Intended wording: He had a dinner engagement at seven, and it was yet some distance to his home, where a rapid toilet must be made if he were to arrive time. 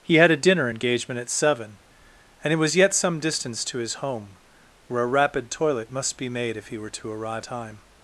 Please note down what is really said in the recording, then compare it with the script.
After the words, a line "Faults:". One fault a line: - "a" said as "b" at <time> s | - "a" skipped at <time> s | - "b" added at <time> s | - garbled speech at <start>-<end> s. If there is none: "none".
He had a dinner engagement at seven, and it was yet some distance to his home, where a rapid toilet must be made if he were to arrive time.
Faults:
none